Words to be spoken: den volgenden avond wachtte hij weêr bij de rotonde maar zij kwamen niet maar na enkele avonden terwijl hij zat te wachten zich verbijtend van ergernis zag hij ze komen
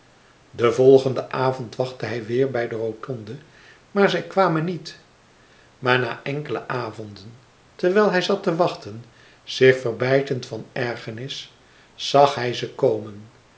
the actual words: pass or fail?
pass